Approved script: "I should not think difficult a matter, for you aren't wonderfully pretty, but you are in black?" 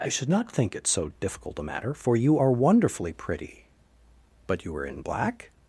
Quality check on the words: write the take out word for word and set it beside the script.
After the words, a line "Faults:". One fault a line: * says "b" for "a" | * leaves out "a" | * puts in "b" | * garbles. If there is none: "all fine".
"I should not think it so difficult a matter, for you are wonderfully pretty, but you are in black?"
Faults:
* puts in "it so"
* says "are" for "aren't"